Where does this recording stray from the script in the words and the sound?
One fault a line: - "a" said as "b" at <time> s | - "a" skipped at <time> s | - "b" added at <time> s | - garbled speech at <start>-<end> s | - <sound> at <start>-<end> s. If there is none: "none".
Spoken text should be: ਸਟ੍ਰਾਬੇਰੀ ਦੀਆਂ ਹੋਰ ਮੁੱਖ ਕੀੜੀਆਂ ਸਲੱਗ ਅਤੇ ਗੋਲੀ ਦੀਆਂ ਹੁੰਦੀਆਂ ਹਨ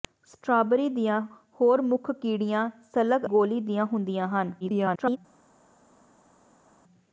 - "ਅਤੇ" skipped at 3.2 s
- garbled speech at 4.6-5.2 s